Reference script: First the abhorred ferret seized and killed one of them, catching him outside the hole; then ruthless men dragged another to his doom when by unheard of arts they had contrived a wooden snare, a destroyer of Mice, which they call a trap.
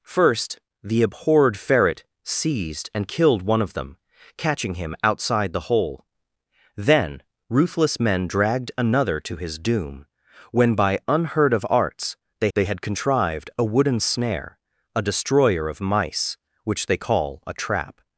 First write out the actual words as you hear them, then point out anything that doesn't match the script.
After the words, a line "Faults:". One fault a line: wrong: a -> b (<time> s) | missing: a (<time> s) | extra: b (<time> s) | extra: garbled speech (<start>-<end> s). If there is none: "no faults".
First the abhorred ferret seized and killed one of them, catching him outside the hole; then ruthless men dragged another to his doom when by unheard of arts they they had contrived a wooden snare, a destroyer of Mice, which they call a trap.
Faults:
extra: they (12.5 s)